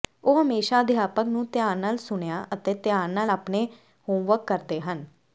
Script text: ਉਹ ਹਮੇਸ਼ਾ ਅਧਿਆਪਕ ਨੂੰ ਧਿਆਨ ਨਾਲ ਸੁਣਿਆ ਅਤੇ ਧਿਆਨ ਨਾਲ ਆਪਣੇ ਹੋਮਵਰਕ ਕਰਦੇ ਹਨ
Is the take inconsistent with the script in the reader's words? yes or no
no